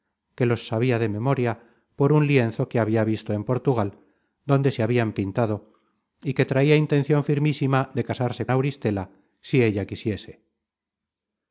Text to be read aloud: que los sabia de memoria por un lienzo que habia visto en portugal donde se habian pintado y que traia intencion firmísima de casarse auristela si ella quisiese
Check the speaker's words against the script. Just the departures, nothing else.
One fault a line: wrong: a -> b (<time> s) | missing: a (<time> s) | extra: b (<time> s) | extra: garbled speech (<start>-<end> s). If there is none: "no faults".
no faults